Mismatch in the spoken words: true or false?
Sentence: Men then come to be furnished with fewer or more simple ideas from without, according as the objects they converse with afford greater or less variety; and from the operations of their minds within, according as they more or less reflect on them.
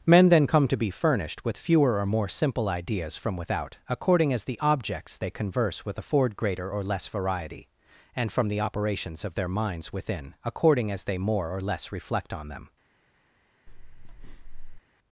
false